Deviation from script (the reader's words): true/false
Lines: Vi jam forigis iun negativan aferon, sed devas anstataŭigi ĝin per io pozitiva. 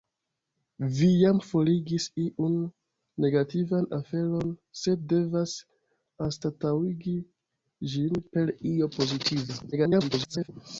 true